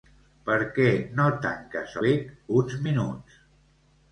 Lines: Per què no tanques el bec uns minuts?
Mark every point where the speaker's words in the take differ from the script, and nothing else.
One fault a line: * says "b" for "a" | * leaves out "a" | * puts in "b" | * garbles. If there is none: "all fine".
* leaves out "el"